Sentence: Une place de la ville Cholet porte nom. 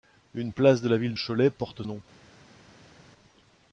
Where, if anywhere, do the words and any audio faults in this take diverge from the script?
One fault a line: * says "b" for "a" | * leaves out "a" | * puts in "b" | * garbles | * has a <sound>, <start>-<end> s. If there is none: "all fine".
all fine